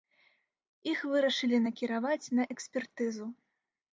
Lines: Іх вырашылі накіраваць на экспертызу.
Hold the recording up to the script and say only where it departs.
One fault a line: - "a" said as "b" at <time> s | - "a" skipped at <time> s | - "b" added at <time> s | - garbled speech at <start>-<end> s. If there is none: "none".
none